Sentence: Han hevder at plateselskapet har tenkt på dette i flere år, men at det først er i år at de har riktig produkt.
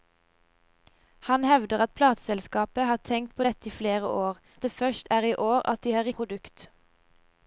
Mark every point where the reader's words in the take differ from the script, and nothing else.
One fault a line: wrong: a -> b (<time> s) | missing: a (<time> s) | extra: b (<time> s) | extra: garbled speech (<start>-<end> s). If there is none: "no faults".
missing: men (4.4 s)
missing: riktig (6.1 s)